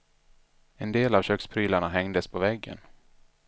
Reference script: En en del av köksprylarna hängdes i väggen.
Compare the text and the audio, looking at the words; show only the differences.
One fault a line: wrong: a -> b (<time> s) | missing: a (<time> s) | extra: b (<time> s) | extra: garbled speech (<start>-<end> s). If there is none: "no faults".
missing: en (0.9 s)
wrong: i -> på (2.3 s)